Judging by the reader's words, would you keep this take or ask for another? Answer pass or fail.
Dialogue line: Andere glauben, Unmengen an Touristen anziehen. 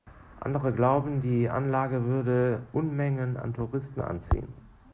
fail